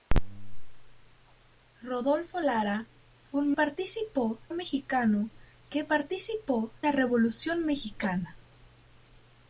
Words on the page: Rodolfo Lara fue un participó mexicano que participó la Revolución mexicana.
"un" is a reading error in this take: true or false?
false